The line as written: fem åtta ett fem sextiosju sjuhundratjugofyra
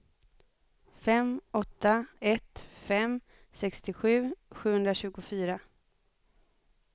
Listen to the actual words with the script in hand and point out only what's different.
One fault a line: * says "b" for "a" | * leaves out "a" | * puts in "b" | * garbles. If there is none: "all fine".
all fine